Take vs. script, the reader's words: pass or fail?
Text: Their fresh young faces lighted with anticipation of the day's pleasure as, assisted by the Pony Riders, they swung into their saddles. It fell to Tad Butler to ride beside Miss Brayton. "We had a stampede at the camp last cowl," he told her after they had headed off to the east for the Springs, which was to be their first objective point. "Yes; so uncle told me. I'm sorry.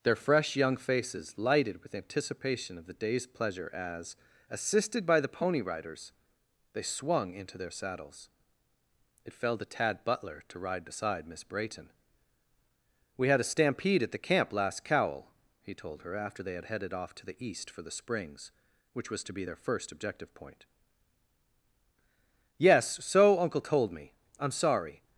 pass